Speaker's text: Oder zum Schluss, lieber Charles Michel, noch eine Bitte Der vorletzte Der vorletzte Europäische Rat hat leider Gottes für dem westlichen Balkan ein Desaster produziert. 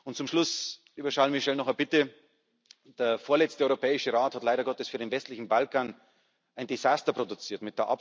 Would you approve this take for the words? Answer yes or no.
no